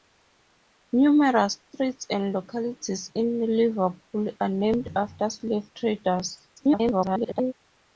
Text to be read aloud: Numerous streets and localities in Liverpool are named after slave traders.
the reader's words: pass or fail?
fail